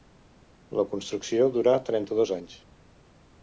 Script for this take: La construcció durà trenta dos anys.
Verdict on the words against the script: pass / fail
pass